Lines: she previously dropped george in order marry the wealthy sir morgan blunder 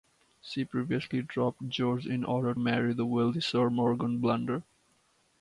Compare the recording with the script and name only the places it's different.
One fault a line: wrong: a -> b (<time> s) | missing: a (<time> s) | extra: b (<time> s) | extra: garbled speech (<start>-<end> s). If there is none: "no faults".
no faults